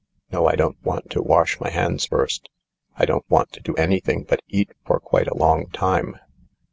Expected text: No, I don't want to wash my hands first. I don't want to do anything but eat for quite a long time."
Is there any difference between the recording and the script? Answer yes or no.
no